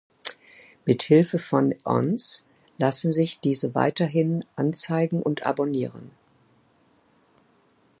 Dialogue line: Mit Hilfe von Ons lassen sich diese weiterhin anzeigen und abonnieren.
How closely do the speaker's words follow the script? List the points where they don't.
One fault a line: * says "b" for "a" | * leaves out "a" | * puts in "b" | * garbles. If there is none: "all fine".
all fine